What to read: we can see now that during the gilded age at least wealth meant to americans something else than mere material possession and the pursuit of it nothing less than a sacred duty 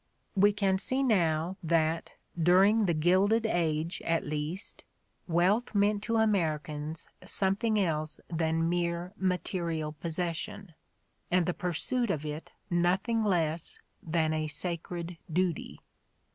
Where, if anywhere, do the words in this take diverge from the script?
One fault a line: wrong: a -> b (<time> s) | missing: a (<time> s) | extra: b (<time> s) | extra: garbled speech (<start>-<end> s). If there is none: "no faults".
no faults